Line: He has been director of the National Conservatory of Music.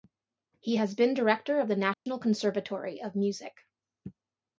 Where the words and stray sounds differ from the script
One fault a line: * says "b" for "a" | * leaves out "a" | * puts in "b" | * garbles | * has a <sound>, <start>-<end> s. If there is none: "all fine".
* has a dropout, 1.9-2.1 s